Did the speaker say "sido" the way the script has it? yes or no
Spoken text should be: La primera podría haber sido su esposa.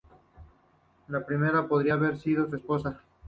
yes